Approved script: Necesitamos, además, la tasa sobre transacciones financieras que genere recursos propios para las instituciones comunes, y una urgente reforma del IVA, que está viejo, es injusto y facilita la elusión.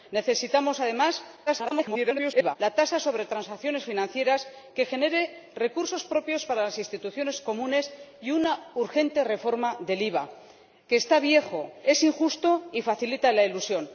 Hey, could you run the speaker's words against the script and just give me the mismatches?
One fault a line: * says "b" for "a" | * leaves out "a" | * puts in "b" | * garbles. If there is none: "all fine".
* garbles